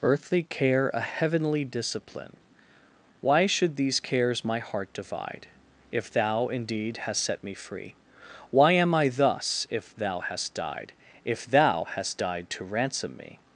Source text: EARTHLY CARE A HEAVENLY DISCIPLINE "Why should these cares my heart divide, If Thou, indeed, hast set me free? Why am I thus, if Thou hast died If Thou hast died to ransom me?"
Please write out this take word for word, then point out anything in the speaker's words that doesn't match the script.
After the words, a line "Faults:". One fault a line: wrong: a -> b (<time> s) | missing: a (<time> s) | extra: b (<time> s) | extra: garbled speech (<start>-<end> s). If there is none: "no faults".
EARTHLY CARE A HEAVENLY DISCIPLINE "Why should these cares my heart divide, If Thou, indeed, hast set me free? Why am I thus, if Thou hast died If Thou hast died to ransom me?"
Faults:
no faults